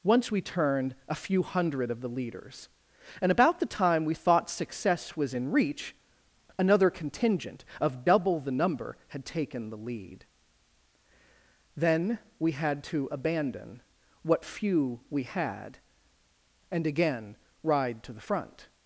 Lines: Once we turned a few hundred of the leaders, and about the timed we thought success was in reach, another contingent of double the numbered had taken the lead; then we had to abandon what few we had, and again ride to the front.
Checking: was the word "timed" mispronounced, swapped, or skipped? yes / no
yes